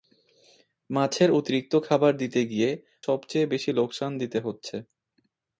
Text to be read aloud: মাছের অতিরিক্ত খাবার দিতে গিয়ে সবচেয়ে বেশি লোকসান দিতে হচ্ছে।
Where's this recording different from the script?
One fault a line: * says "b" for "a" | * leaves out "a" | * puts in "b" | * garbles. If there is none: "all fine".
all fine